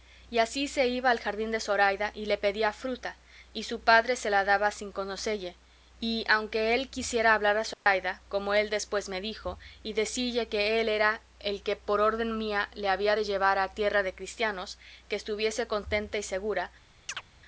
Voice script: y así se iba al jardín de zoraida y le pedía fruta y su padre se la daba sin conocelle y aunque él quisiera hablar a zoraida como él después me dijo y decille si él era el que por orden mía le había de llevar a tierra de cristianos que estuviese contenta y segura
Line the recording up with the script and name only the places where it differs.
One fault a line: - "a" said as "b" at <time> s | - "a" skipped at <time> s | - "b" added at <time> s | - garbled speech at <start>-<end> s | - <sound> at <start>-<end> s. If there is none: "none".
- dropout at 7.7-7.9 s
- "si" said as "que" at 10.5 s
- chirp at 17.1-17.2 s